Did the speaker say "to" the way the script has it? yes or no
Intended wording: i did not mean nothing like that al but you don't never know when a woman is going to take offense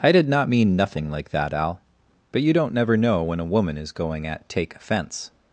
no